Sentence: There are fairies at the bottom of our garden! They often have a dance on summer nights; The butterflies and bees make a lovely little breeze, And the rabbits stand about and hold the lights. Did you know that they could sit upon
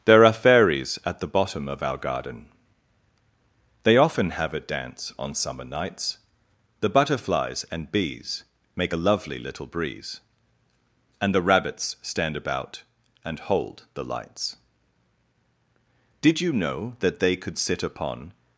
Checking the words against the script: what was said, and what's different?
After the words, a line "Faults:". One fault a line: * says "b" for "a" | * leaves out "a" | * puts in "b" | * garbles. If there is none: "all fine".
There are fairies at the bottom of our garden! They often have a dance on summer nights; The butterflies and bees make a lovely little breeze, And the rabbits stand about and hold the lights. Did you know that they could sit upon
Faults:
all fine